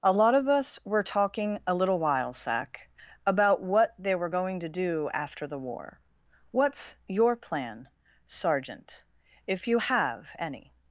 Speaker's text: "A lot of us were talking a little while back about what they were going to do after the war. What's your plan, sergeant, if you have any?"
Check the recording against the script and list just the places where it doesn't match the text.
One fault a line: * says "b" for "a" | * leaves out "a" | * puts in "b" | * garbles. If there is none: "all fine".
* says "sack" for "back"